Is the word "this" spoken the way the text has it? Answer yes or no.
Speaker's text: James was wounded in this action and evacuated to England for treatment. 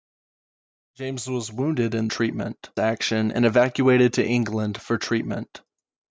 no